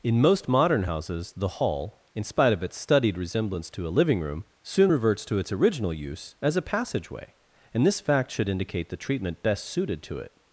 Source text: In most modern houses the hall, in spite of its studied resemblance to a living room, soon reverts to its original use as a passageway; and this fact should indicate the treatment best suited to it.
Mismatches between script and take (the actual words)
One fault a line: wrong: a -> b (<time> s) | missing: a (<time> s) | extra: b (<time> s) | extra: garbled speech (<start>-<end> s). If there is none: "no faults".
no faults